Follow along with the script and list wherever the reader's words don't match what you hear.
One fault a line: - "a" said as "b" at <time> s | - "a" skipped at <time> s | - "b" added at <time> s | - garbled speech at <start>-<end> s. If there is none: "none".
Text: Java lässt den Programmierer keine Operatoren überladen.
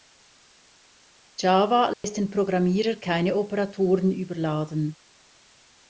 none